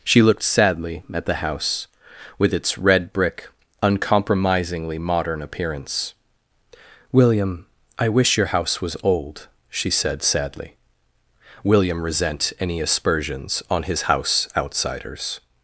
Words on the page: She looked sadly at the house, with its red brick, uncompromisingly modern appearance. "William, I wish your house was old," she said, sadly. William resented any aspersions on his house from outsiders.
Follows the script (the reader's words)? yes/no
no